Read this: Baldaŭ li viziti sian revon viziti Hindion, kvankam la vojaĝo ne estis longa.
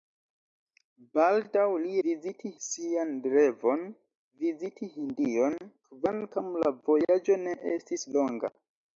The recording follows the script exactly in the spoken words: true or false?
true